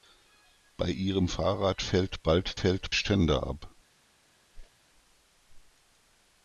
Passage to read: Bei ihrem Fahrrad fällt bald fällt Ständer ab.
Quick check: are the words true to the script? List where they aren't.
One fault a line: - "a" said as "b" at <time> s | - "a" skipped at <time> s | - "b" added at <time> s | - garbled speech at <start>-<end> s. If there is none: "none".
none